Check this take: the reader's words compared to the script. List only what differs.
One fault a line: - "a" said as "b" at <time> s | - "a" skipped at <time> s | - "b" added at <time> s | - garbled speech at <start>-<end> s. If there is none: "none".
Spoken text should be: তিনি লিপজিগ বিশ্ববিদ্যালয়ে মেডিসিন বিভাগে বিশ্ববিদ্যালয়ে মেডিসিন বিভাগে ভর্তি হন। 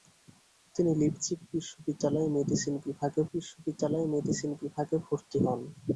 none